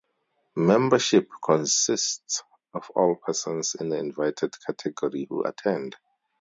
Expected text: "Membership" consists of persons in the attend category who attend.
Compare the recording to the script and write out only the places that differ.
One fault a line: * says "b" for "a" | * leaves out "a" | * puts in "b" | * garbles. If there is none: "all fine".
* puts in "all"
* says "invited" for "attend"